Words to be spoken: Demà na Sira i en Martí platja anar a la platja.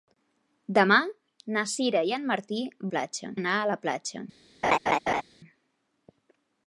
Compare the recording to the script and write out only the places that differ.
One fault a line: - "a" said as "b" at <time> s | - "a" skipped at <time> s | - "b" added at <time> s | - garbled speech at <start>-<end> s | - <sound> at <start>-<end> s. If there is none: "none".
- laugh at 4.6-5.2 s